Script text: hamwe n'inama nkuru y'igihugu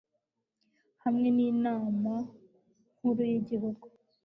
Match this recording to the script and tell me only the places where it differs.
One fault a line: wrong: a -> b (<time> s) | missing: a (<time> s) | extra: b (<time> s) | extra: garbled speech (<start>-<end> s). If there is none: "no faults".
no faults